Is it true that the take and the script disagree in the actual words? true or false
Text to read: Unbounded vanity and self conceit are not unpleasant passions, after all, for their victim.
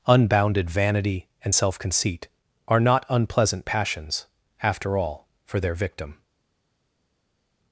false